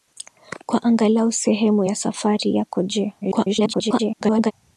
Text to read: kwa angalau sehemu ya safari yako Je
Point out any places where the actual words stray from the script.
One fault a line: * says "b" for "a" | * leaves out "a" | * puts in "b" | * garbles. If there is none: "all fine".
* garbles